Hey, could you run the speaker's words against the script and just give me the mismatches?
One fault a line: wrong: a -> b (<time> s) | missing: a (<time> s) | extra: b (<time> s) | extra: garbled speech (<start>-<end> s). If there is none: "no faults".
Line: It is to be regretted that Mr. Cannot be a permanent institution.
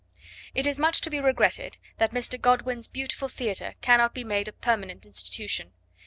extra: much (0.8 s)
extra: Godwin's beautiful theatre (2.4 s)
extra: made (4.2 s)